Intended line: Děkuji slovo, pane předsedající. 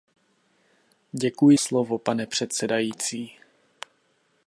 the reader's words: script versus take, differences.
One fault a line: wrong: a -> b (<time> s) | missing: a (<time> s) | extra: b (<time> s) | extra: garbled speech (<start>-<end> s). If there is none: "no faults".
no faults